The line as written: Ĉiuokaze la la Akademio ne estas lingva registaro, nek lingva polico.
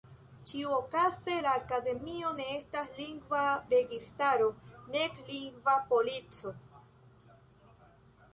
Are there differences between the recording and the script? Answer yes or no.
yes